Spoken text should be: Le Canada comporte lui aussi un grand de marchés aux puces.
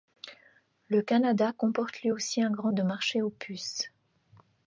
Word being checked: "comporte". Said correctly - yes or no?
yes